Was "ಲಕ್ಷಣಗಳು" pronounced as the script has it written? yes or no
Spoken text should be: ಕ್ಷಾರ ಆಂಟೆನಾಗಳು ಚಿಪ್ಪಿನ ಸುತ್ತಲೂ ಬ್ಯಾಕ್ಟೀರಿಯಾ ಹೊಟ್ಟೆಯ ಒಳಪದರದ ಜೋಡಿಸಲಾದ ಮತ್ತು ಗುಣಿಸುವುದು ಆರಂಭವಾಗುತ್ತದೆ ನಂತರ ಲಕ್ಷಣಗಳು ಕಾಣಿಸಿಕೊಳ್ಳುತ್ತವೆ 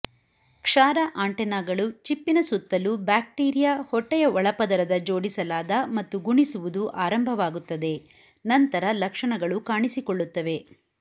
yes